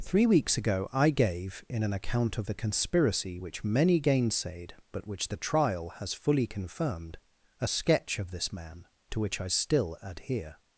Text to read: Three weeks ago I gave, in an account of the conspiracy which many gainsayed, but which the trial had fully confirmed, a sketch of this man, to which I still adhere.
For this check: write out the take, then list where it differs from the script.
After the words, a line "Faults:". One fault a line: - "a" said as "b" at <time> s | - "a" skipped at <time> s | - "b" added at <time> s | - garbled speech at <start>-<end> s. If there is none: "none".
Three weeks ago I gave, in an account of the conspiracy which many gainsayed, but which the trial has fully confirmed, a sketch of this man, to which I still adhere.
Faults:
- "had" said as "has" at 6.0 s